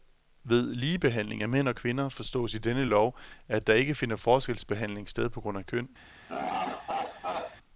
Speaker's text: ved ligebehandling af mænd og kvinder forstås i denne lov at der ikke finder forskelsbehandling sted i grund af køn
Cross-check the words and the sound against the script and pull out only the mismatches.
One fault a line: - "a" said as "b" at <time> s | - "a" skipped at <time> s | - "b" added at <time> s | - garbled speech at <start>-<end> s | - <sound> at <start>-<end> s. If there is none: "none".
- "i" said as "på" at 5.3 s
- laugh at 6.3-7.6 s